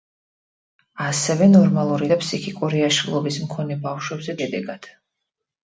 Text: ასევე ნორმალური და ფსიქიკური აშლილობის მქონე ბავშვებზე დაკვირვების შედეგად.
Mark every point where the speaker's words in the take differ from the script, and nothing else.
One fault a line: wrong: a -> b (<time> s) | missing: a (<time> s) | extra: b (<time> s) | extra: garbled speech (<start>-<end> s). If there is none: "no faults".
missing: დაკვირვების (4.4 s)